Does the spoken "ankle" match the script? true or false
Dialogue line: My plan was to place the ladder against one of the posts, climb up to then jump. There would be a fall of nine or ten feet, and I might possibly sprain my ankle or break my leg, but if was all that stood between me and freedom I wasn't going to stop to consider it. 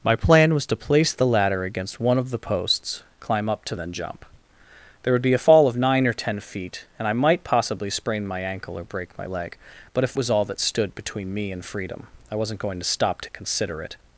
true